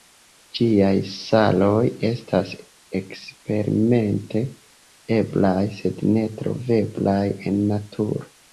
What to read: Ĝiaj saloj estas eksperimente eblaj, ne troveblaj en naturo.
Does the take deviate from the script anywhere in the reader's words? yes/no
yes